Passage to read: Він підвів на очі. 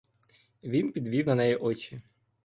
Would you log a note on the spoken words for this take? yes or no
yes